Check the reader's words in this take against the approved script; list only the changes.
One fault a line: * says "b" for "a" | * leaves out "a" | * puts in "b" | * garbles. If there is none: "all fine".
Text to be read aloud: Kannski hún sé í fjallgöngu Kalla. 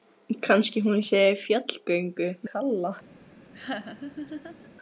all fine